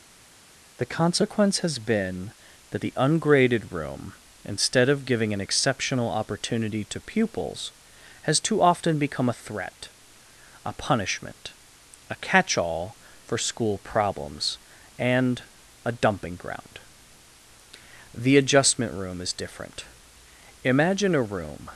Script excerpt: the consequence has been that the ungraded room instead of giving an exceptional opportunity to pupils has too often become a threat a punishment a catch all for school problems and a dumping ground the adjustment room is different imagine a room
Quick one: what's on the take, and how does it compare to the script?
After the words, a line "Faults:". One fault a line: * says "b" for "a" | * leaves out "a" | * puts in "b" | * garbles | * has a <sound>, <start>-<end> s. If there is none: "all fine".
the consequence has been that the ungraded room instead of giving an exceptional opportunity to pupils has too often become a threat a punishment a catch all for school problems and a dumping ground the adjustment room is different imagine a room
Faults:
all fine